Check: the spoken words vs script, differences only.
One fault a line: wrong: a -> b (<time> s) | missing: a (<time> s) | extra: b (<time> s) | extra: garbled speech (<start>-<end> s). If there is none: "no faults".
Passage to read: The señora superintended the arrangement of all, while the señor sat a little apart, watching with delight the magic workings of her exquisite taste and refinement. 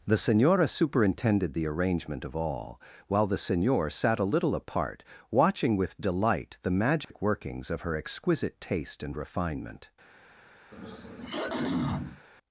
no faults